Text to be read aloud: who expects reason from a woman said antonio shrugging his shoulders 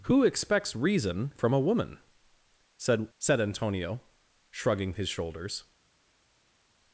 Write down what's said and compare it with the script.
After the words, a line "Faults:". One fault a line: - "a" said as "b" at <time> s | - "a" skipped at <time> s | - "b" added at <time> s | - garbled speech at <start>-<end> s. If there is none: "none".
who expects reason from a woman said said antonio shrugging his shoulders
Faults:
- "said" added at 3.2 s